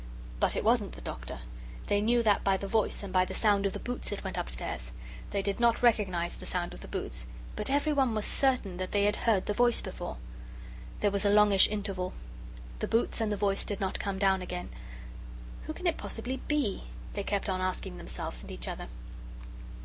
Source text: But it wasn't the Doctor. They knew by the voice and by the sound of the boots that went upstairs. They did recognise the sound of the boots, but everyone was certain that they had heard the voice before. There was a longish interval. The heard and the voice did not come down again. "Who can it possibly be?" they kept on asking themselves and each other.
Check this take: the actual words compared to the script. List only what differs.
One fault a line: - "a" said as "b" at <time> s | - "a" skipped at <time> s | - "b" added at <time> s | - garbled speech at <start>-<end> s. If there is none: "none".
- "that" added at 2.2 s
- "not" added at 5.6 s
- "heard" said as "boots" at 12.9 s